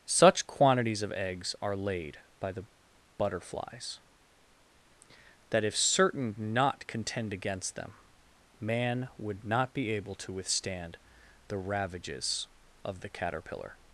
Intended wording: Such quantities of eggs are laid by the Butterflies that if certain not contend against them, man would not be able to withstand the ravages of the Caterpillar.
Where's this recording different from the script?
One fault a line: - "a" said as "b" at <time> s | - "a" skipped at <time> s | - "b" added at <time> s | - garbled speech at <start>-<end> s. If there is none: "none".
none